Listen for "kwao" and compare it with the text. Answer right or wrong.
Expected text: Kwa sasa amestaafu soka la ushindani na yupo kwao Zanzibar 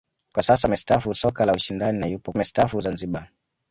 wrong